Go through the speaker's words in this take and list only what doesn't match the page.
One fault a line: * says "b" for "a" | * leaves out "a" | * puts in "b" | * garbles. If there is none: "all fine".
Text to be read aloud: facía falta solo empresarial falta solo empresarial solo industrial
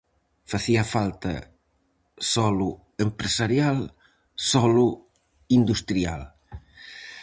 * leaves out "falta solo empresarial"